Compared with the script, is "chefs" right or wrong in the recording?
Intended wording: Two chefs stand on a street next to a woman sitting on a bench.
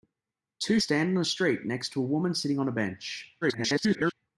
wrong